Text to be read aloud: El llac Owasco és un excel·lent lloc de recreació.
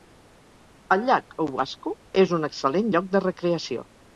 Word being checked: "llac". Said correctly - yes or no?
yes